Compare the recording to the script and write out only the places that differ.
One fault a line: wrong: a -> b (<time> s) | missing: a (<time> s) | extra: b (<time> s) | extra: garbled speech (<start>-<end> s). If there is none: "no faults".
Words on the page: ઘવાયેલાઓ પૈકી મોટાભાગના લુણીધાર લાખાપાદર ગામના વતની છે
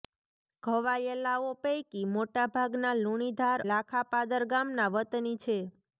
no faults